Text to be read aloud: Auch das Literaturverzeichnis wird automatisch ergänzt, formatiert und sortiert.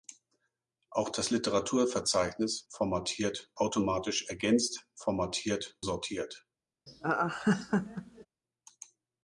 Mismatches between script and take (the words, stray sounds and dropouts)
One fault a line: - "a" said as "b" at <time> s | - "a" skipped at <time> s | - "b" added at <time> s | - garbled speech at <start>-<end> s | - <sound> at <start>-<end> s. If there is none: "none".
- "wird" said as "formatiert" at 2.7 s
- "und" skipped at 5.8 s
- laugh at 6.9-8.3 s